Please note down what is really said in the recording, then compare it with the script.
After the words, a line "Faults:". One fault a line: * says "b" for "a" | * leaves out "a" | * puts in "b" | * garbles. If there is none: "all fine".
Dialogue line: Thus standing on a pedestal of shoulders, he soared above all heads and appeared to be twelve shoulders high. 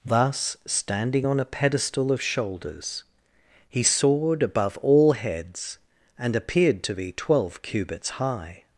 Thus standing on a pedestal of shoulders, he soared above all heads and appeared to be twelve cubits high.
Faults:
* says "cubits" for "shoulders"